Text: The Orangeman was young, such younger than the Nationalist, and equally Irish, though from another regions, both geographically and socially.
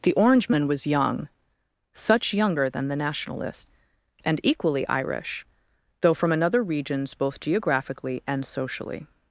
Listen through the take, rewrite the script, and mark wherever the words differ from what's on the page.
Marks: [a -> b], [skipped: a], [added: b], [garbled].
The Orangeman was young, such younger than the Nationalist, and equally Irish, though from another regions, both geographically and socially.